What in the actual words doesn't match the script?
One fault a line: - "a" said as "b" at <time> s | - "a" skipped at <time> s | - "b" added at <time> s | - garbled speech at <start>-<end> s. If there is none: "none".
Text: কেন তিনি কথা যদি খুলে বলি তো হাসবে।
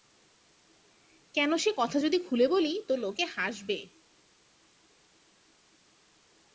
- "তিনি" said as "সে" at 1.6 s
- "লোকে" added at 3.0 s